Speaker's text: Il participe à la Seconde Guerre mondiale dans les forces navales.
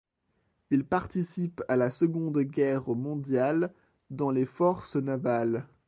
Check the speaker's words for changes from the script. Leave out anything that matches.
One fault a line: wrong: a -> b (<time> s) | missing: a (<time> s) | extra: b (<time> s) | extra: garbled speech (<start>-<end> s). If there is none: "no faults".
no faults